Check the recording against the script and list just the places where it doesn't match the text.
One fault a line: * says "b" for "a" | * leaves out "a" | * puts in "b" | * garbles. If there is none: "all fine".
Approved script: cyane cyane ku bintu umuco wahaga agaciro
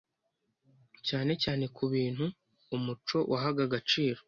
all fine